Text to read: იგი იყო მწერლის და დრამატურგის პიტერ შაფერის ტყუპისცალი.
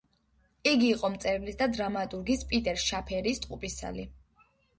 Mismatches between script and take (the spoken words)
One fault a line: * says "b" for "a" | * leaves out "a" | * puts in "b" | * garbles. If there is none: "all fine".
all fine